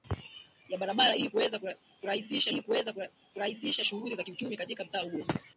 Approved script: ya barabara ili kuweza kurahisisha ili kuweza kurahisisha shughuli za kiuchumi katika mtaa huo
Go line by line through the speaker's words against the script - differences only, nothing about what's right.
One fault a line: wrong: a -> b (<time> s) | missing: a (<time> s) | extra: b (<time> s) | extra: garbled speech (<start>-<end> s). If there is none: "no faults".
no faults